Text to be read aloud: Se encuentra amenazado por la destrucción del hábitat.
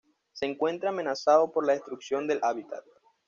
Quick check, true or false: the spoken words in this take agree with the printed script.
true